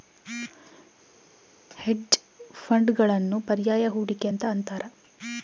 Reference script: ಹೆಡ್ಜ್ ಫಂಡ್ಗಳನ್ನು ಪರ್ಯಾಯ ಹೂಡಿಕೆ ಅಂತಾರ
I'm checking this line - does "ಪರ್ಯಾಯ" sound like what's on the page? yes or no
yes